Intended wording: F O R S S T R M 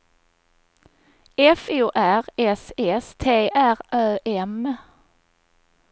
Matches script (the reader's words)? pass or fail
fail